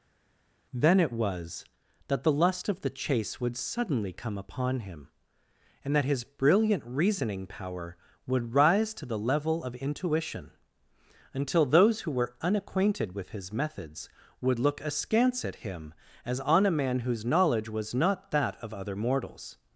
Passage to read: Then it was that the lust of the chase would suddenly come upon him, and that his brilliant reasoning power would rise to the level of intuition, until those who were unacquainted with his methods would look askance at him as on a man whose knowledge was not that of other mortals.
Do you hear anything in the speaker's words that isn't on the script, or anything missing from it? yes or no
no